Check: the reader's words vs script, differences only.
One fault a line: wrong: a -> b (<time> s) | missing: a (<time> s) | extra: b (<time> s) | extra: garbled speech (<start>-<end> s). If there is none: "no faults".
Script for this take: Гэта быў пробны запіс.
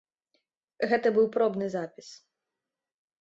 no faults